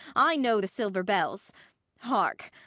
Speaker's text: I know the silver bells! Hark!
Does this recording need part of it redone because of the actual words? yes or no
no